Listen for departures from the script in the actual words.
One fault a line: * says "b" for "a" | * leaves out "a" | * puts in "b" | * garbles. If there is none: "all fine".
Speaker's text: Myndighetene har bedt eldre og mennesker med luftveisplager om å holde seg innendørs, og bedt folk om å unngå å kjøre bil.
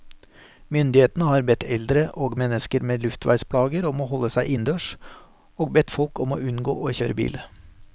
all fine